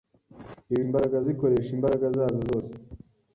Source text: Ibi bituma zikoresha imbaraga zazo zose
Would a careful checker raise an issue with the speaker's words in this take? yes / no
yes